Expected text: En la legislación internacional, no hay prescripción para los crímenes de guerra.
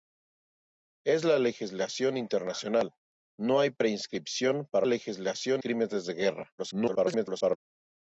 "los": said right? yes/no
no